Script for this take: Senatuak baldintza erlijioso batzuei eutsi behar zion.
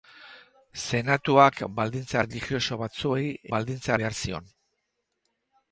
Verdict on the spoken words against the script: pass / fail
fail